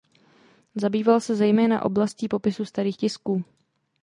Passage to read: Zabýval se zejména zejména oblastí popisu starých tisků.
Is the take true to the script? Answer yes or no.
no